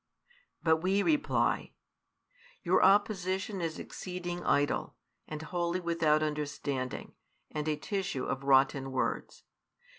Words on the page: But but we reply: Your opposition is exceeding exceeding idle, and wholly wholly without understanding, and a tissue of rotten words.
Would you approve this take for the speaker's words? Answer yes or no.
no